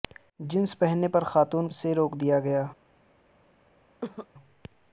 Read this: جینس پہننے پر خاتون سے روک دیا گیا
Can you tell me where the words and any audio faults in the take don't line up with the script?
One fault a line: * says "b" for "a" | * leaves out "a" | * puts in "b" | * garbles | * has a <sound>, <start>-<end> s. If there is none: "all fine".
* has a cough, 4.0-4.3 s